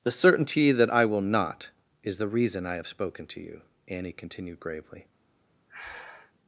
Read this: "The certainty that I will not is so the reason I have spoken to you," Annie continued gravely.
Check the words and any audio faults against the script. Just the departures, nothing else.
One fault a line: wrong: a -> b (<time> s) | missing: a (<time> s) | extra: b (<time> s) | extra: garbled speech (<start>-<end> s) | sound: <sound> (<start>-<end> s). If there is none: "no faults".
missing: so (2.2 s)
sound: breath (5.7-6.3 s)